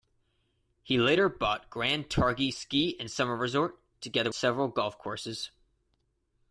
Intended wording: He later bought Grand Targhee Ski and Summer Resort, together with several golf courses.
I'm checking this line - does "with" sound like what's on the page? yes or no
no